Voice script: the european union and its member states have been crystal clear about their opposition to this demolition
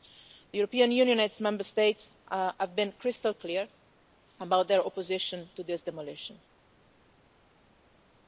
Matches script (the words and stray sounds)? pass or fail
pass